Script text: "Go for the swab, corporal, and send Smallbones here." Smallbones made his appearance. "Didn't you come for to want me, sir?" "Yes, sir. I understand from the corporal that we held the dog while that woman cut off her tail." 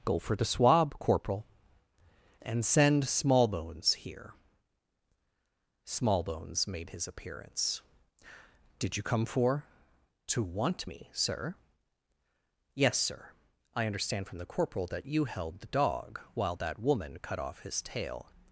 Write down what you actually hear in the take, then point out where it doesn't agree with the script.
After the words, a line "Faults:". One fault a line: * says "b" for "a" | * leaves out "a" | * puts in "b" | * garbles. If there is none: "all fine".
"Go for the swab, corporal, and send Smallbones here." Smallbones made his appearance. "Did you come for to want me, sir?" "Yes, sir. I understand from the corporal that you held the dog while that woman cut off his tail."
Faults:
* says "Did" for "Didn't"
* says "you" for "we"
* says "his" for "her"